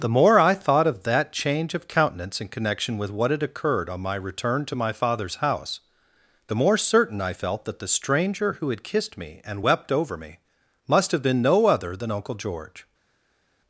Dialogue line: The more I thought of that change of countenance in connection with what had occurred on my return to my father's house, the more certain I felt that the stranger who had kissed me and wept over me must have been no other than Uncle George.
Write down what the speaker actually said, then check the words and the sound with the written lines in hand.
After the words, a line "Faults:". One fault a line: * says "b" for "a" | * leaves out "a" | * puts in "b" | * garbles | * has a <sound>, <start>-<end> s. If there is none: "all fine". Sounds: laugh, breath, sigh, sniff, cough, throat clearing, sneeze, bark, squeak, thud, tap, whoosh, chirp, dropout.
The more I thought of that change of countenance in connection with what had occurred on my return to my father's house, the more certain I felt that the stranger who had kissed me and wept over me must have been no other than Uncle George.
Faults:
all fine